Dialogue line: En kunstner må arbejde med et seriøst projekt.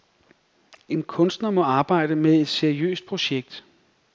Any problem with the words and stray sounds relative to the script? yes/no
no